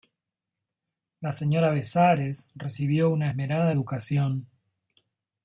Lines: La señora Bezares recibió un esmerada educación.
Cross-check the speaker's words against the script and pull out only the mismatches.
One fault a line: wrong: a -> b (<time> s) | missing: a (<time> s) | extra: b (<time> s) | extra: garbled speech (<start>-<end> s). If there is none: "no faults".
wrong: un -> una (3.1 s)